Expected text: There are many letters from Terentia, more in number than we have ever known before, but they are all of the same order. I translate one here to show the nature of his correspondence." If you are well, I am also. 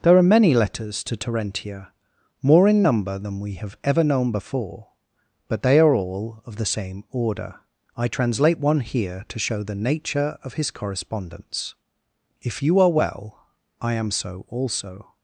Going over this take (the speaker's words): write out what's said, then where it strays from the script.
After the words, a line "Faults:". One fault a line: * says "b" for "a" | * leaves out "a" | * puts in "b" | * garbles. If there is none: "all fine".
There are many letters to Terentia, more in number than we have ever known before, but they are all of the same order. I translate one here to show the nature of his correspondence." If you are well, I am so also.
Faults:
* says "to" for "from"
* puts in "so"